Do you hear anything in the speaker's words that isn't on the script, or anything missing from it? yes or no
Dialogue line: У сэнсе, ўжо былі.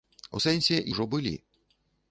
no